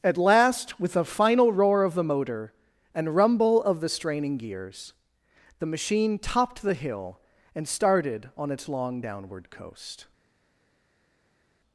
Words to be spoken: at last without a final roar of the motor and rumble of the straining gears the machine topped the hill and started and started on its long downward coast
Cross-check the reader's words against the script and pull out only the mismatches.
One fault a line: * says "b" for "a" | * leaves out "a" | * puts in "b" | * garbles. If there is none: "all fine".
* says "with" for "without"
* leaves out "and started"